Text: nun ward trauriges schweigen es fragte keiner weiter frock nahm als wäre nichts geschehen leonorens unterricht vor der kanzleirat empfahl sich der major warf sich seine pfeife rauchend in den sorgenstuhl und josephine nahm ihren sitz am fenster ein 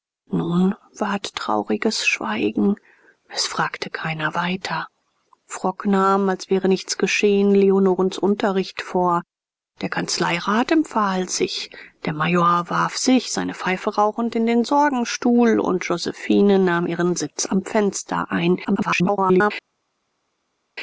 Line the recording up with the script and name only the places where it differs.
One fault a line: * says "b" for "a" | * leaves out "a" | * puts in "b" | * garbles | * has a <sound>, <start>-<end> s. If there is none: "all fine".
* garbles